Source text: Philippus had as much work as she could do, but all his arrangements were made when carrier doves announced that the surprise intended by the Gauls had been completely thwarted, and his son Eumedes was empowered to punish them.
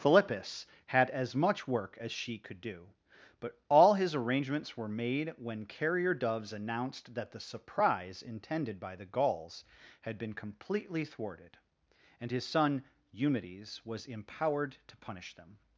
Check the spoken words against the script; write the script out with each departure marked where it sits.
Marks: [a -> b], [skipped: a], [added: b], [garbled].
Philippus had as much work as she could do, but all his arrangements were made when carrier doves announced that the surprise intended by the Gauls had been completely thwarted, and his son Eumedes was empowered to punish them.